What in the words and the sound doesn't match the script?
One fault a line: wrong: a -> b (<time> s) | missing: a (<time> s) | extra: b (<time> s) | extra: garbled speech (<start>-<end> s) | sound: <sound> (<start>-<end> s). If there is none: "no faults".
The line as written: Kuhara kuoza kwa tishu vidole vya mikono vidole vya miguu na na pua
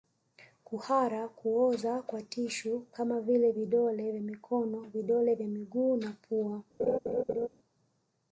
extra: kama vile (2.9 s)
missing: na (6.1 s)
sound: laugh (6.8-7.5 s)